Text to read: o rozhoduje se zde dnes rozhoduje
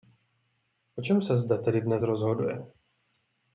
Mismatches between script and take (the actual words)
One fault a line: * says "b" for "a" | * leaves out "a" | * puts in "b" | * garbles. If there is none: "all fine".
* says "čem" for "rozhoduje"
* puts in "tedy"